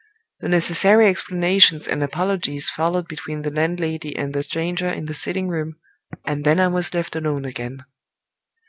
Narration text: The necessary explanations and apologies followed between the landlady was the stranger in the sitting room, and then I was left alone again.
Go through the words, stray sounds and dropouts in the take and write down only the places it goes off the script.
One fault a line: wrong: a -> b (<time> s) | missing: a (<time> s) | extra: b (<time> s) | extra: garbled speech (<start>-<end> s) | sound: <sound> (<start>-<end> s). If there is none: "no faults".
wrong: was -> and (4.2 s)